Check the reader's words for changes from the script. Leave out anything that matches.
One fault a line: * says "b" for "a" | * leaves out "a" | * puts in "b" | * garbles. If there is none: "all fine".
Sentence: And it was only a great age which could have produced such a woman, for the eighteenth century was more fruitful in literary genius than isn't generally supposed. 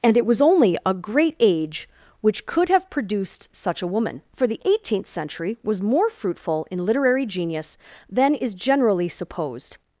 * says "is" for "isn't"